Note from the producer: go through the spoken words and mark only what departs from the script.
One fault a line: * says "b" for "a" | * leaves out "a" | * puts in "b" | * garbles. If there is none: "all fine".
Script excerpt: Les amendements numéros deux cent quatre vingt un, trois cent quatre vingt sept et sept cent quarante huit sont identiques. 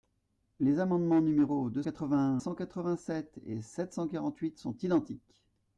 * leaves out "cent"
* leaves out "un trois"